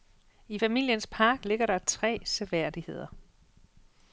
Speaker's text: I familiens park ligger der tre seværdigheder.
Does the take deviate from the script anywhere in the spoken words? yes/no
no